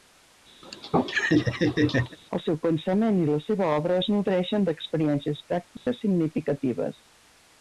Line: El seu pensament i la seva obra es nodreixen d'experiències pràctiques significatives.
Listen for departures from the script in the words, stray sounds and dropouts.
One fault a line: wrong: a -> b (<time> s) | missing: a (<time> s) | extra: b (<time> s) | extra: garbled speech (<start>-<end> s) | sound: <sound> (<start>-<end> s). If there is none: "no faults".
sound: laugh (0.6-2.2 s)
sound: dropout (5.8-5.9 s)